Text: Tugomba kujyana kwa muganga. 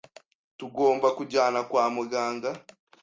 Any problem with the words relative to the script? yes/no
no